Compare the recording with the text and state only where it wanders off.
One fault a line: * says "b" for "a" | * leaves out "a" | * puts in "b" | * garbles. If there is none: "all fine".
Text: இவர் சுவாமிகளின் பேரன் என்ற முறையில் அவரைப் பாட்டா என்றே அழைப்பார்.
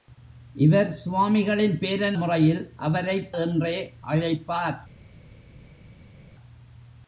* leaves out "என்ற"
* leaves out "பாட்டா"